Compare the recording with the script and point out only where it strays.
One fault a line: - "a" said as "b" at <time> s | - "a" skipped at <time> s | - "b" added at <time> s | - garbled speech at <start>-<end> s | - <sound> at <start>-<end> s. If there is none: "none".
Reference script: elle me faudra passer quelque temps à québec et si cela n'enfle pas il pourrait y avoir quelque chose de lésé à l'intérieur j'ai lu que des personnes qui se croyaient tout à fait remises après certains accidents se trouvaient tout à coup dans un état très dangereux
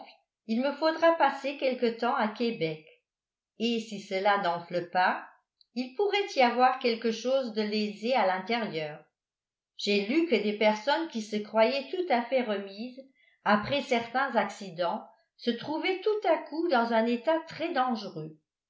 - "elle" said as "il" at 0.5 s